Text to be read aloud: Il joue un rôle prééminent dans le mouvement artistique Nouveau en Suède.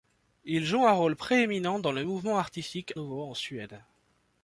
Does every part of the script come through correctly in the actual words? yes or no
yes